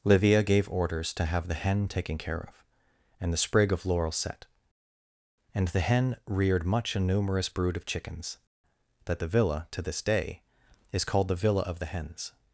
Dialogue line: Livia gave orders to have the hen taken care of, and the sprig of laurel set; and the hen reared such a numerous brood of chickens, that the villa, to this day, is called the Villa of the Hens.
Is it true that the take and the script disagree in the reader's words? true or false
true